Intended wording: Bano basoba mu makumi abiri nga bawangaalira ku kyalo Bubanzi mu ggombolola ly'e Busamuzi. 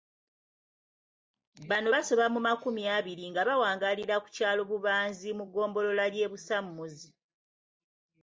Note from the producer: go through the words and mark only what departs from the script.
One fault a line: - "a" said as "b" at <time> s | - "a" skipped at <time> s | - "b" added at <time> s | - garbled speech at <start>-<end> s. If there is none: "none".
none